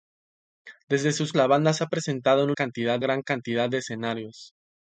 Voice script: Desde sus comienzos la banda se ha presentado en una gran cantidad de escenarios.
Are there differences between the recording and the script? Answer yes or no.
yes